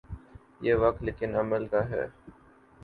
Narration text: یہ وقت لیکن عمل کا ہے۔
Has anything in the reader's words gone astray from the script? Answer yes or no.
no